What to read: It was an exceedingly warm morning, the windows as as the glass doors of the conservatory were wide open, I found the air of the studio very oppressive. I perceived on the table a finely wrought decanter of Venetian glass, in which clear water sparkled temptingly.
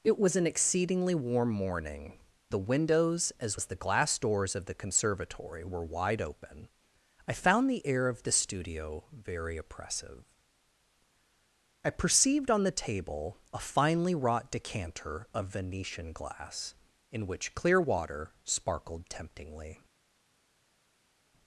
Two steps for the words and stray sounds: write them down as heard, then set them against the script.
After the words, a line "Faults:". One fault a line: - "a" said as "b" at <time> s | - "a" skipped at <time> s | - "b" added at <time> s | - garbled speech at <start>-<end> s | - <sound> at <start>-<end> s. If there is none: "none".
It was an exceedingly warm morning, the windows as as the glass doors of the conservatory were wide open, I found the air of the studio very oppressive. I perceived on the table a finely wrought decanter of Venetian glass, in which clear water sparkled temptingly.
Faults:
none